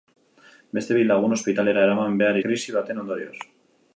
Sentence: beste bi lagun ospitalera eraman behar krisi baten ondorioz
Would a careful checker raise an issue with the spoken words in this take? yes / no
no